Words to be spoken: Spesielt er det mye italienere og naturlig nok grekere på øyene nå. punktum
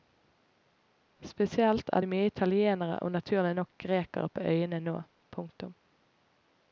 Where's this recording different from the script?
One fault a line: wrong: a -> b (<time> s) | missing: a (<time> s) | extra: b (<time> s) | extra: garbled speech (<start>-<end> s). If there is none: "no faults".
no faults